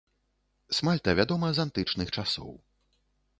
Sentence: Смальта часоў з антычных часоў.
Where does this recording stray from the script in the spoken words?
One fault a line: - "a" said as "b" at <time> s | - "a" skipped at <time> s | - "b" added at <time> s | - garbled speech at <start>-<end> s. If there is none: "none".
- "часоў" said as "вядома" at 1.2 s